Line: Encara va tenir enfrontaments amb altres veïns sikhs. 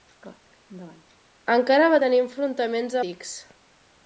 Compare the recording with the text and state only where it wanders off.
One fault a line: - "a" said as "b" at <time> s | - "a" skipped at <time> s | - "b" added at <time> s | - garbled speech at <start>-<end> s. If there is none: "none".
- "amb altres veïns" skipped at 3.0 s